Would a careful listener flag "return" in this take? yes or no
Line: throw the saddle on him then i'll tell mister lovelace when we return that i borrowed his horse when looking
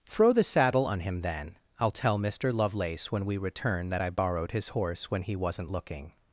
no